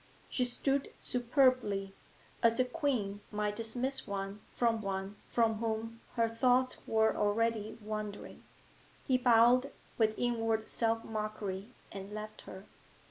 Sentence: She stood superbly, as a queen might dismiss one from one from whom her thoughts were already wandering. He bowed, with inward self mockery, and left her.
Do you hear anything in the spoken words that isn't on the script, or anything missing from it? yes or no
no